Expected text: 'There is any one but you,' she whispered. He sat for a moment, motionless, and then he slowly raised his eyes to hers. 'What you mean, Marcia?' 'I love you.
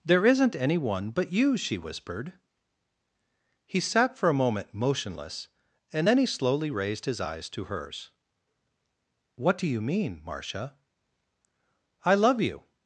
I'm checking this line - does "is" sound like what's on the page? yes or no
no